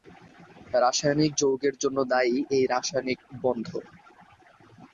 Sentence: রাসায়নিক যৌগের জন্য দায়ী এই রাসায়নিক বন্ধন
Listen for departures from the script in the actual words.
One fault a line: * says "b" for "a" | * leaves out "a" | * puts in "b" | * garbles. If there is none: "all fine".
all fine